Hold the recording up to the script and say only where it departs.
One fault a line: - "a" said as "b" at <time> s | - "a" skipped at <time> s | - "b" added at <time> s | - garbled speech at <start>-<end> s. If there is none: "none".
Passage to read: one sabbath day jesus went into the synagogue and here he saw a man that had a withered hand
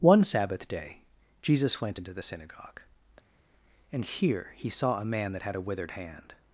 none